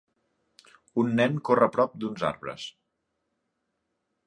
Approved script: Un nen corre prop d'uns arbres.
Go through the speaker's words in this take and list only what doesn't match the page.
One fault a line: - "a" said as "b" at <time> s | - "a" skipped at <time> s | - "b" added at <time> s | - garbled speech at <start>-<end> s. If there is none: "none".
none